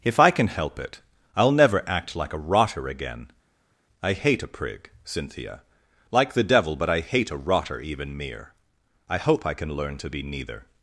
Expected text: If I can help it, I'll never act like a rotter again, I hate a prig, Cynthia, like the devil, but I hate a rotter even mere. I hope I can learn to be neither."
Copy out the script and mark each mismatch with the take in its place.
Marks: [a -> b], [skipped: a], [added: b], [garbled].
If I can help it, I'll never act like a rotter again, I hate a prig, Cynthia, like the devil, but I hate a rotter even mere. I hope I can learn to be neither."